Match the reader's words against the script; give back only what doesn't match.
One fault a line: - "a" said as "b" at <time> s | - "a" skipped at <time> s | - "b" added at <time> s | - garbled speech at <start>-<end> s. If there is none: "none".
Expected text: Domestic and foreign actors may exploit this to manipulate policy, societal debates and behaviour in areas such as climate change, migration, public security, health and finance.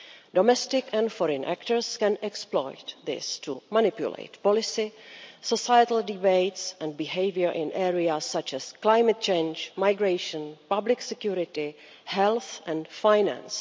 - "may" said as "can" at 2.0 s